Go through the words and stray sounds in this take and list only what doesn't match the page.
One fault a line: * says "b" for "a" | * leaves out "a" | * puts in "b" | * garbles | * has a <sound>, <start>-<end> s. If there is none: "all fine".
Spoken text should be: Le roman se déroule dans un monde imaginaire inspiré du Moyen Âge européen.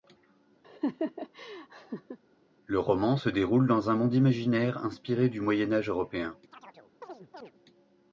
* has a laugh, 0.6-2.2 s
* has a chirp, 6.5-7.5 s